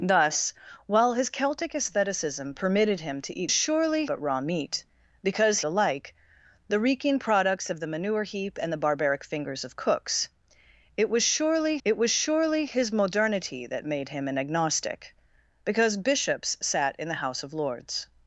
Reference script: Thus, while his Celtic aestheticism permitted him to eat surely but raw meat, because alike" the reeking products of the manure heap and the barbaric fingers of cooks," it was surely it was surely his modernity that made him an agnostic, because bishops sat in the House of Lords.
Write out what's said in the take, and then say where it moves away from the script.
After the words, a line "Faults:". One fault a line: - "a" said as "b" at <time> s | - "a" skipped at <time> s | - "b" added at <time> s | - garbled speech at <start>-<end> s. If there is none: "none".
Thus, while his Celtic aestheticism permitted him to eat surely but raw meat, because alike" the reeking products of the manure heap and the barbaric fingers of cooks," it was surely it was surely his modernity that made him an agnostic, because bishops sat in the House of Lords.
Faults:
none